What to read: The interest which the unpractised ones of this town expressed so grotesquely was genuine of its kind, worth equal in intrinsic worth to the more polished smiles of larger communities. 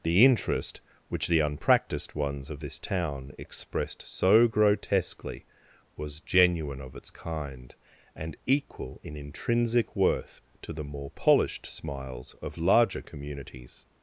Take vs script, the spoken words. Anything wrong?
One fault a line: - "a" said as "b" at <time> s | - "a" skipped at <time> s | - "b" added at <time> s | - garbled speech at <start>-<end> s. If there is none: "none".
- "worth" said as "and" at 8.1 s